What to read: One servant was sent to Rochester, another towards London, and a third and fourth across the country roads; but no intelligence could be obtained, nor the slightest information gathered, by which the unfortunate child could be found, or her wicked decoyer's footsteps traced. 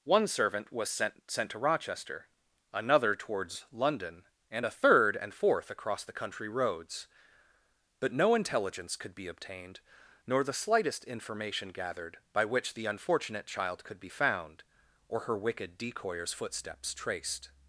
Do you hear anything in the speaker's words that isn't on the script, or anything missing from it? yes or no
yes